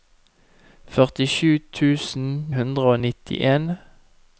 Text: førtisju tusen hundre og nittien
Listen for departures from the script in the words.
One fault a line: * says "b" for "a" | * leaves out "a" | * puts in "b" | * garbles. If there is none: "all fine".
all fine